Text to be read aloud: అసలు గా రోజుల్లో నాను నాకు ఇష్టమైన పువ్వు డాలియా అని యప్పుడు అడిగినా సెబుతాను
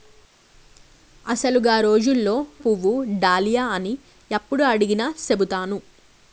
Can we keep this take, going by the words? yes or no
no